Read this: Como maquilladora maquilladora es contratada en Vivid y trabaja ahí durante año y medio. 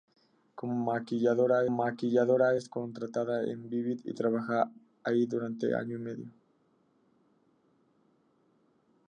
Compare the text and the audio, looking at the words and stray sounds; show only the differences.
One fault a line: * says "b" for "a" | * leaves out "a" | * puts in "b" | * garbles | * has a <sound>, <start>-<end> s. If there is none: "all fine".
all fine